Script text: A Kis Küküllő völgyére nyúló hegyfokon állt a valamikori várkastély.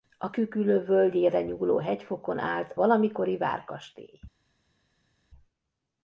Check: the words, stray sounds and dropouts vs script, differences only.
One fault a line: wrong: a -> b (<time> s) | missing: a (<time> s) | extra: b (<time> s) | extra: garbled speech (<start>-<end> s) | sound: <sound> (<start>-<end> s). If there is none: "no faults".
missing: Kis (0.3 s)
missing: a (2.7 s)